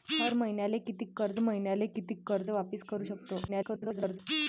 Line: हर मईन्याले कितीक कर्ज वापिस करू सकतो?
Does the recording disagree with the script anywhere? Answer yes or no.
yes